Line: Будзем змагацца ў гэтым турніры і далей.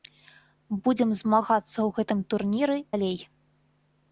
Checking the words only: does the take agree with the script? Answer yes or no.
no